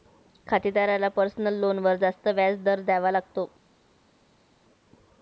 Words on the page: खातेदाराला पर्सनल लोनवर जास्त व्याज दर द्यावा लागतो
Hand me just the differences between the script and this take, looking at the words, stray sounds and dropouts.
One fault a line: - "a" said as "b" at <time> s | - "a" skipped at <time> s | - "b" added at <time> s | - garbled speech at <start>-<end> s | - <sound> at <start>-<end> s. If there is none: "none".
none